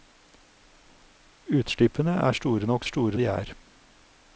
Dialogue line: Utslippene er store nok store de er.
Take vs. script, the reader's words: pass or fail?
pass